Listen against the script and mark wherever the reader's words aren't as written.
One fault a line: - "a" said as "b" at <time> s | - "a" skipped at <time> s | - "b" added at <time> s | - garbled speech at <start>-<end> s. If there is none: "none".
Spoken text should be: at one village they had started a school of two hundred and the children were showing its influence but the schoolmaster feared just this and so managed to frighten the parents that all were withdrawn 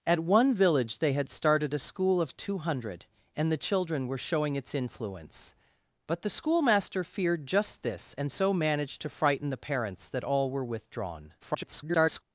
- garbled speech at 11.4-12.2 s